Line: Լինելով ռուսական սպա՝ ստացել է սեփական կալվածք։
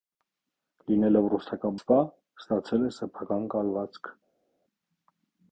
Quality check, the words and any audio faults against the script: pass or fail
pass